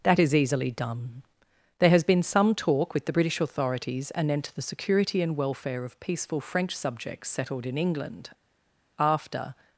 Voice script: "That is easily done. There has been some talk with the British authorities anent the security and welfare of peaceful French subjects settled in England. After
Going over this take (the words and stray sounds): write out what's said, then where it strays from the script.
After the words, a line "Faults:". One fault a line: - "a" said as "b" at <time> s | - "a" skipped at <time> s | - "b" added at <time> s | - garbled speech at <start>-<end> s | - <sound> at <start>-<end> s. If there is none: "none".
"That is easily done. There has been some talk with the British authorities anent the security and welfare of peaceful French subjects settled in England. After
Faults:
none